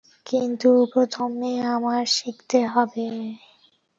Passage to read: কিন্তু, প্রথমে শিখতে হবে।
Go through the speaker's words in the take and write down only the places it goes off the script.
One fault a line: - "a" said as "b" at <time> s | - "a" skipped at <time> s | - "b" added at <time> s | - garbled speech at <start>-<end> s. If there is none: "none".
- "আমার" added at 1.7 s